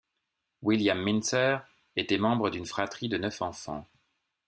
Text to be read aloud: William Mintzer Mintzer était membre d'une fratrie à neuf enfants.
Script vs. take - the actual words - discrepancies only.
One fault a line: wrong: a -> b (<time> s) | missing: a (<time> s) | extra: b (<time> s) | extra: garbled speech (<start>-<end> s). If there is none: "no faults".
missing: Mintzer (1.6 s)
wrong: à -> de (3.1 s)